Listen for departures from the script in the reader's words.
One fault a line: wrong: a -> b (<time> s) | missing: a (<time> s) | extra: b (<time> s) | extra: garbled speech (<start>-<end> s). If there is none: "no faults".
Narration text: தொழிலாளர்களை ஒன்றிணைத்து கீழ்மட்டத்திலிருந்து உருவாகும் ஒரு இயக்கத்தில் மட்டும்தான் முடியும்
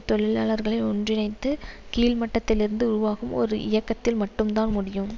no faults